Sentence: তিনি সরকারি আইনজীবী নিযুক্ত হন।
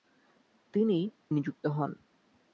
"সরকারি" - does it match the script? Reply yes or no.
no